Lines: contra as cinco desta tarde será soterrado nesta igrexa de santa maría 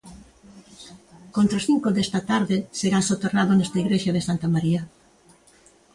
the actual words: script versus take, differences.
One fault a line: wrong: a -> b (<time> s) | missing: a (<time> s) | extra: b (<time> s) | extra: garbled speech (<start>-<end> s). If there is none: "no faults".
no faults